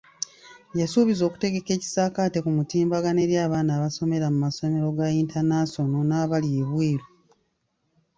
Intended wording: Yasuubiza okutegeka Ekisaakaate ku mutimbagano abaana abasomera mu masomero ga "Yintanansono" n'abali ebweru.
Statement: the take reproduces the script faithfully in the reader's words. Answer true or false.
false